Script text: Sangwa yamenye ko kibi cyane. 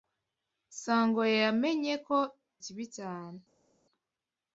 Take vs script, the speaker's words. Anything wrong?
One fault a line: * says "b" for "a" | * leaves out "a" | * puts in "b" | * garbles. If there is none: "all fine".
all fine